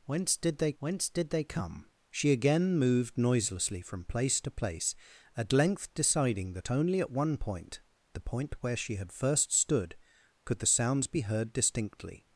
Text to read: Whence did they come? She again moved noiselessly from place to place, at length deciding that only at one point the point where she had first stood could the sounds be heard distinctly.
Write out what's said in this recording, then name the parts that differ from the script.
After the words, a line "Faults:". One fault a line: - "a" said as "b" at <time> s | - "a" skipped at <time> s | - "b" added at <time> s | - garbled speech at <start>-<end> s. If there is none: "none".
Whence did they whence did they come? She again moved noiselessly from place to place, at length deciding that only at one point the point where she had first stood could the sounds be heard distinctly.
Faults:
- "whence did they" added at 0.8 s